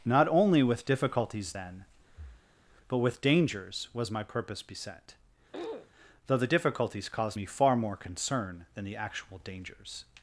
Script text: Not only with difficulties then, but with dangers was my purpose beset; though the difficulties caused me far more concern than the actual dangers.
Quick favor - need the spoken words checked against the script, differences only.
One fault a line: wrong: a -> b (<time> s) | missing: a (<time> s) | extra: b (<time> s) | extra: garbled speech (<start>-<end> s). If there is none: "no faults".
no faults